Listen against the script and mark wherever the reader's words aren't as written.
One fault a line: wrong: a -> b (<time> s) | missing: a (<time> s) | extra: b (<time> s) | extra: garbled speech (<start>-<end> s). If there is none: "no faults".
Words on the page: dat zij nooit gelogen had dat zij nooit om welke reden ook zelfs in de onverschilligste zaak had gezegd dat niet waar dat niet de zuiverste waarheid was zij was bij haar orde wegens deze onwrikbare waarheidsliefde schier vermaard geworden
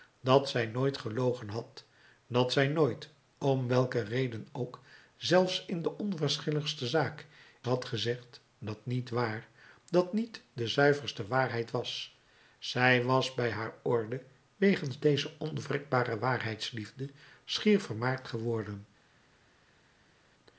no faults